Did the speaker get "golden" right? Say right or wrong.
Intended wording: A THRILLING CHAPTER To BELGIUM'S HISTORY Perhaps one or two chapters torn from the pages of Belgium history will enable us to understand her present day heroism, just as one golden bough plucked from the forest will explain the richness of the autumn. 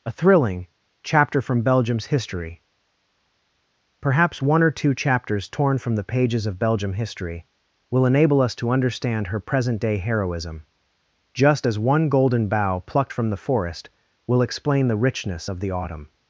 right